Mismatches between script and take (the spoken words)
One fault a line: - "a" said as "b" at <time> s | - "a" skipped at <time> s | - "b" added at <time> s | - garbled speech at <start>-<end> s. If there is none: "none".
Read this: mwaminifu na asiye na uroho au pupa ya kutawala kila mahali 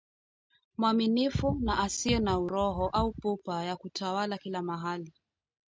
none